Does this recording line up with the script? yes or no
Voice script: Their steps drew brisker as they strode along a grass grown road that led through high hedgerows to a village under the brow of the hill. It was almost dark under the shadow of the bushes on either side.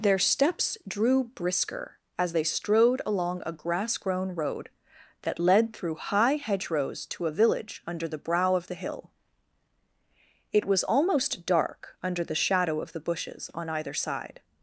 yes